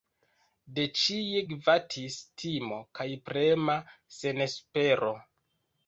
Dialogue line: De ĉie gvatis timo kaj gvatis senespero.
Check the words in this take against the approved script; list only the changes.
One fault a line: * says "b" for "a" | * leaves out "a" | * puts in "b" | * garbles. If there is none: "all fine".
* says "prema" for "gvatis"